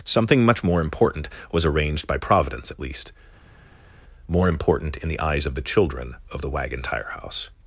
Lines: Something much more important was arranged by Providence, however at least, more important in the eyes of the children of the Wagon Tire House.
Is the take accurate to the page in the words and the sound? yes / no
no